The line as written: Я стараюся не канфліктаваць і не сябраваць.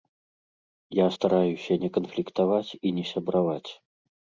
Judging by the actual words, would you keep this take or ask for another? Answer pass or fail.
pass